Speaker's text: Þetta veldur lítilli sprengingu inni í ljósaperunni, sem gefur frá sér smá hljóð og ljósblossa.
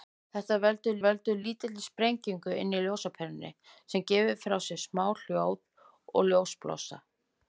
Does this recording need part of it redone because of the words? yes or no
yes